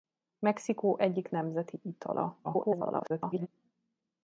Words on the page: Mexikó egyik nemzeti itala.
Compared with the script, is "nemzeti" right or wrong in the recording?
right